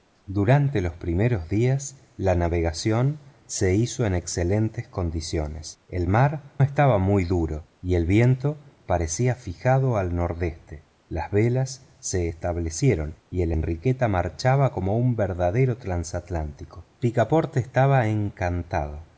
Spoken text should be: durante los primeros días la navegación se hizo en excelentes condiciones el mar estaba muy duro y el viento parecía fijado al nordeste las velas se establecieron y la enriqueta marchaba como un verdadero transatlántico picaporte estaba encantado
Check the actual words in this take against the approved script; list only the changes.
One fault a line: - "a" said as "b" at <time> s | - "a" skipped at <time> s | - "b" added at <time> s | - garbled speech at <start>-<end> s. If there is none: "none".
none